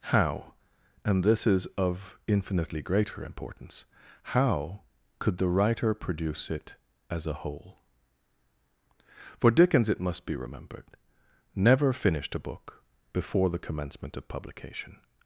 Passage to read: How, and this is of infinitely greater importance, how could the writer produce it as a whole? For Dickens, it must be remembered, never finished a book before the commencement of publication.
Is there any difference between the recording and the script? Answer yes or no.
no